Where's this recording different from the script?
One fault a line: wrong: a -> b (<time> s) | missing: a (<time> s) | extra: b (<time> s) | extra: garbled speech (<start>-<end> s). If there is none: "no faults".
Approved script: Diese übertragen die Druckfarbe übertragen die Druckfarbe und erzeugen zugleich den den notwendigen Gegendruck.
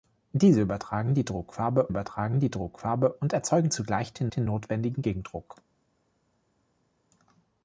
no faults